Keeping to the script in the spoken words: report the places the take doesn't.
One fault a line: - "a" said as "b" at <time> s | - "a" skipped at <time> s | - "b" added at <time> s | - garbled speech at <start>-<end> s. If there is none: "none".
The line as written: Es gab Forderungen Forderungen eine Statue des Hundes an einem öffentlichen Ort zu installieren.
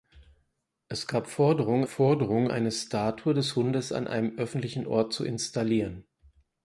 none